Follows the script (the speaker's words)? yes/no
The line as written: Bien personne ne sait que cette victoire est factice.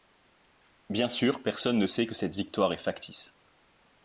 no